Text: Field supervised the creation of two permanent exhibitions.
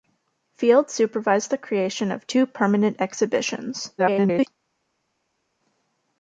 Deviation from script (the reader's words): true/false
true